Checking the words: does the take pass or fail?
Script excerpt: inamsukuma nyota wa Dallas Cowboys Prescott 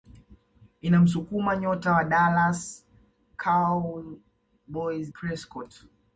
pass